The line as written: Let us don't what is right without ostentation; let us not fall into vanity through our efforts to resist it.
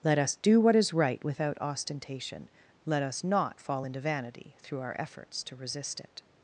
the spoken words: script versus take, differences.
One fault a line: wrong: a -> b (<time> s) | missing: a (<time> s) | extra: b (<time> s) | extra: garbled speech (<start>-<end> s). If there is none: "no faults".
wrong: don't -> do (0.3 s)